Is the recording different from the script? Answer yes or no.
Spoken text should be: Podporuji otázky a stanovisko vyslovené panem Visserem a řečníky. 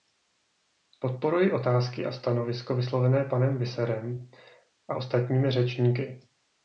yes